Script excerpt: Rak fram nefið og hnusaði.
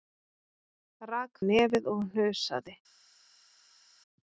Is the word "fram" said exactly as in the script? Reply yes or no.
no